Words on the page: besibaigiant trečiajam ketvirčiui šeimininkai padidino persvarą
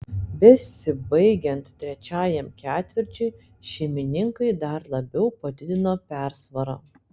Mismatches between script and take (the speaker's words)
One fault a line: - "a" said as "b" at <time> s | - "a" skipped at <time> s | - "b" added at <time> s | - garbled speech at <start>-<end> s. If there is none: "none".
- "dar labiau" added at 4.7 s